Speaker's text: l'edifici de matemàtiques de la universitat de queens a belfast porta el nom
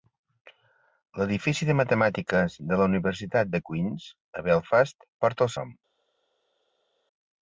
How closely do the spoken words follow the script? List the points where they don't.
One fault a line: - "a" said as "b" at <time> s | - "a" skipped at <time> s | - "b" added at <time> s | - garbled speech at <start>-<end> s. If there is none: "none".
none